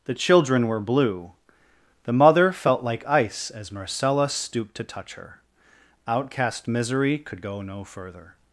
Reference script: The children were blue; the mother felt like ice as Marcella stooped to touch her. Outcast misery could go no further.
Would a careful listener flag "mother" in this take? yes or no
no